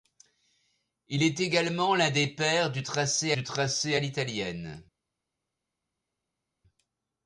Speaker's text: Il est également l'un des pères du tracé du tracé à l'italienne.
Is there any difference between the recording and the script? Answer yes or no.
no